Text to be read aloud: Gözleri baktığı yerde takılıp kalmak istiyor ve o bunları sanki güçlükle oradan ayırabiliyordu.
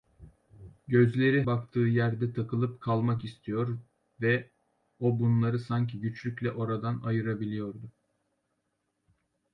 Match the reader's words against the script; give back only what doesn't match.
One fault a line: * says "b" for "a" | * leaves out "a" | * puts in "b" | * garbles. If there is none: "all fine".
all fine